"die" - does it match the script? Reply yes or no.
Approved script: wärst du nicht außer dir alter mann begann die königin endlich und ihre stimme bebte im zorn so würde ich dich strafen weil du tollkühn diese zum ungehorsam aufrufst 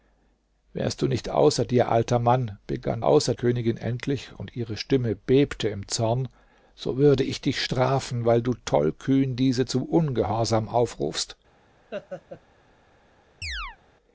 no